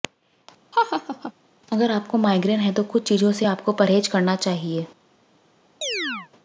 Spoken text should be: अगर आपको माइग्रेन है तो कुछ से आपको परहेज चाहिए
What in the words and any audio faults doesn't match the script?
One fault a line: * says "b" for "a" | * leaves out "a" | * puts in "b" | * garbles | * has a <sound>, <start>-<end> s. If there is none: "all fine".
* has a laugh, 0.7-1.3 s
* puts in "चीजों"
* puts in "करना"
* has a chirp, 5.8-6.3 s